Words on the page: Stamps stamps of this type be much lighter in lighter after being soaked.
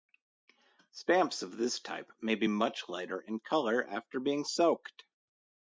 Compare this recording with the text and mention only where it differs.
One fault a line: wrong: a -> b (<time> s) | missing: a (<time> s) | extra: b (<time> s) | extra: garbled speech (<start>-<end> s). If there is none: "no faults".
missing: stamps (1.4 s)
extra: may (2.2 s)
wrong: lighter -> color (3.4 s)